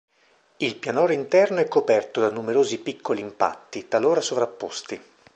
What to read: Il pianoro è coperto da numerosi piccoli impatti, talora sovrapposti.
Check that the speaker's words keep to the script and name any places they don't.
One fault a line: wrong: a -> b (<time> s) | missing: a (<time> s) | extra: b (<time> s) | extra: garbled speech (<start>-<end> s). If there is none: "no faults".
extra: interno (1.1 s)